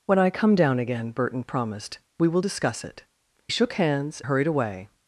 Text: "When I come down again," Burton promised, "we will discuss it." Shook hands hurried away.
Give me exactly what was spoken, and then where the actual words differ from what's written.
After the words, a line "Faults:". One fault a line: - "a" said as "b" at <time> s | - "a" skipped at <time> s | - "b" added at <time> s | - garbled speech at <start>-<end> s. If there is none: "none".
"When I come down again," Burton promised, "we will discuss it." Shook hands hurried away.
Faults:
none